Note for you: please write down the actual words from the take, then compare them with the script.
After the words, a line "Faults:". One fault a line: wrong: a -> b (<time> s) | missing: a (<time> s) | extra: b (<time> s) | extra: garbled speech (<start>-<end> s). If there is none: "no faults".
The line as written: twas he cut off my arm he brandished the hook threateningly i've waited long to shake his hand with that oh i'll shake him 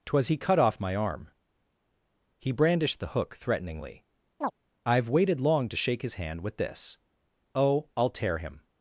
twas he cut off my arm he brandished the hook threateningly i've waited long to shake his hand with this oh i'll tear him
Faults:
wrong: that -> this (6.6 s)
wrong: shake -> tear (8.1 s)